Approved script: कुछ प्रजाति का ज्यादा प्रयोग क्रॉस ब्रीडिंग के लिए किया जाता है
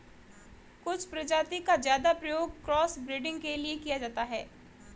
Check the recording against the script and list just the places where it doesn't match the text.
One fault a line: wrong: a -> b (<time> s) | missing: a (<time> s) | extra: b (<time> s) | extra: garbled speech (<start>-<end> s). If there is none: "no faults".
no faults